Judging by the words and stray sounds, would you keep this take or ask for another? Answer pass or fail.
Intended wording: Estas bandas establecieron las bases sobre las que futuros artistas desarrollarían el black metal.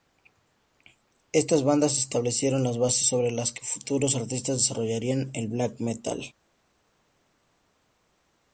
pass